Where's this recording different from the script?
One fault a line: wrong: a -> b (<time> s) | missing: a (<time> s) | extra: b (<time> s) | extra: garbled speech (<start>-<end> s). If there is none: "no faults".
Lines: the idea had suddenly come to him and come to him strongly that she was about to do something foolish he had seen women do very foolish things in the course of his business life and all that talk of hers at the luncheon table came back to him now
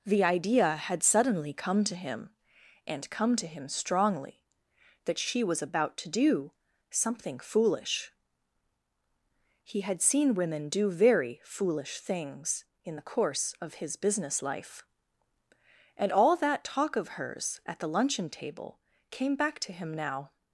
no faults